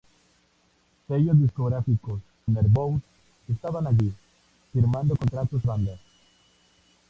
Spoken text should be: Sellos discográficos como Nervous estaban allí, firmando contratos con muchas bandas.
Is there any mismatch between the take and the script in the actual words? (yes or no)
yes